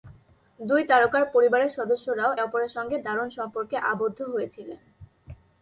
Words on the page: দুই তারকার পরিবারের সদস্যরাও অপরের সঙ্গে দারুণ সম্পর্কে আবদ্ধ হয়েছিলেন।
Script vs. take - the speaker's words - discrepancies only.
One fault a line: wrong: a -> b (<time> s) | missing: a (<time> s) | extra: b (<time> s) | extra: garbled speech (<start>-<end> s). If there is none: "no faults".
no faults